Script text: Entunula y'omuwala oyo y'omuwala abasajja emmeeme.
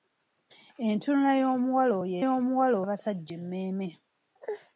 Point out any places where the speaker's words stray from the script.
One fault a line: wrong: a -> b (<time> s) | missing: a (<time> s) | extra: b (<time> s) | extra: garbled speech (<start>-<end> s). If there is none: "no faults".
no faults